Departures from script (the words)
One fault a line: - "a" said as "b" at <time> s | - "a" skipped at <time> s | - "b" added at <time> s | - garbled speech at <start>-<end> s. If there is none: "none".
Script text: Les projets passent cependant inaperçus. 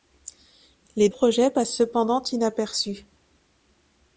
none